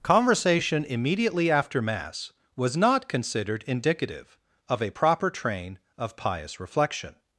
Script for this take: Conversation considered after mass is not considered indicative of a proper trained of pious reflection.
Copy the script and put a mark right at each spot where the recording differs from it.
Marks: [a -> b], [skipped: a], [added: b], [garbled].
Conversation [considered -> immediately] after mass [is -> was] not considered indicative of a proper [trained -> train] of pious reflection.